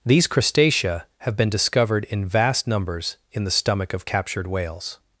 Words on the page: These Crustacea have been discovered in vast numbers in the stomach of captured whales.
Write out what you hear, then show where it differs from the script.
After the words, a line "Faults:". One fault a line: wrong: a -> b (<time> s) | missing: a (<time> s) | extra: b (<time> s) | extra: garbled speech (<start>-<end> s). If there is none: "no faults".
These Crustacea have been discovered in vast numbers in the stomach of captured whales.
Faults:
no faults